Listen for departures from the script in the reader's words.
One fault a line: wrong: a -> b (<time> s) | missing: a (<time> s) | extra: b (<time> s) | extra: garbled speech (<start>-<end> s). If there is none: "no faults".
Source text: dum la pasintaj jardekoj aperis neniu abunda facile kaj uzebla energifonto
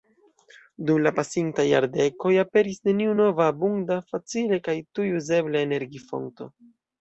extra: nova (3.2 s)
extra: tuj (5.0 s)